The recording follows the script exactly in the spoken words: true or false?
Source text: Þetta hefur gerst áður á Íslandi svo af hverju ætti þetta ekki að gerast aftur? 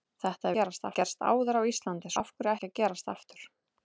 false